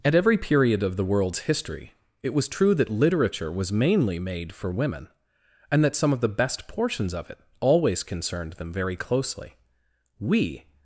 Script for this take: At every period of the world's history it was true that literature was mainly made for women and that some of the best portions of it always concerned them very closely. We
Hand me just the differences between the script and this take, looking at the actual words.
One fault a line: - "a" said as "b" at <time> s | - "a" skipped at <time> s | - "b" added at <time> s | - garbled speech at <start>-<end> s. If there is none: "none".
none